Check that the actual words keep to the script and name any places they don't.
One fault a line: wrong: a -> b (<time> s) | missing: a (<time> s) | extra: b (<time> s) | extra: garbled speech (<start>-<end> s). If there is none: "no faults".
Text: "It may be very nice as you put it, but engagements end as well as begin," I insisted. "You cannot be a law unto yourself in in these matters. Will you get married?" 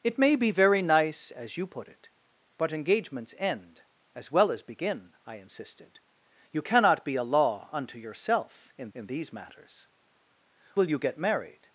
no faults